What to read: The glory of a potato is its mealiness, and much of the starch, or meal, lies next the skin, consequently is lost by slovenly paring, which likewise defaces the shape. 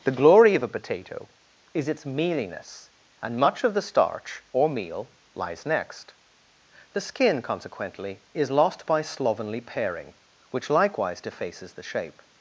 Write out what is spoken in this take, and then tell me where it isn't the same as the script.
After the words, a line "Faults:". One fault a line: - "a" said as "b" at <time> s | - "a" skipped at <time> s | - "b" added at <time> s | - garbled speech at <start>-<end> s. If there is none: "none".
The glory of a potato is its mealiness, and much of the starch, or meal, lies next the skin, consequently is lost by slovenly paring, which likewise defaces the shape.
Faults:
none